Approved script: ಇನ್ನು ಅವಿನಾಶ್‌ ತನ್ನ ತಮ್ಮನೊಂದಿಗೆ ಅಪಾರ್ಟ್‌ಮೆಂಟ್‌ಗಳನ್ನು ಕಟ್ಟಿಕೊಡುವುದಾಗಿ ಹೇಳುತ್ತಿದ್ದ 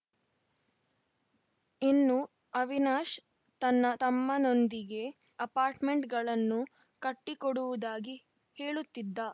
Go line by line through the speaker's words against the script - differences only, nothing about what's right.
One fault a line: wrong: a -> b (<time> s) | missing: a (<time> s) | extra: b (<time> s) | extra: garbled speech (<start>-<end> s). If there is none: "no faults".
no faults